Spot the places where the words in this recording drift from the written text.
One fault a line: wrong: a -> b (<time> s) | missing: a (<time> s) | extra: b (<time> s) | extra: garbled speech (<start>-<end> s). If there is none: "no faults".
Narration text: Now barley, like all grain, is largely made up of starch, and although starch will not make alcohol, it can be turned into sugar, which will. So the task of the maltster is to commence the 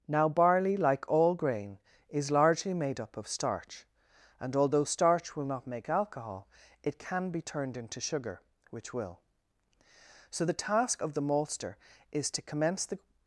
no faults